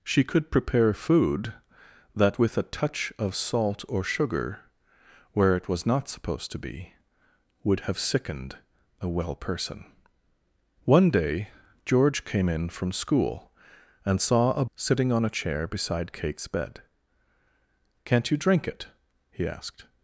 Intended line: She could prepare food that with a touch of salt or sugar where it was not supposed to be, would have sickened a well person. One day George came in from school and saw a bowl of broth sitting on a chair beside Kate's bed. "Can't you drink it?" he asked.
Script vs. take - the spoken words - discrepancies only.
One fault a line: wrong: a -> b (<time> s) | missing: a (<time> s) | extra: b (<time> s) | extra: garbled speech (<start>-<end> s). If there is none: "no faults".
missing: bowl of broth (14.7 s)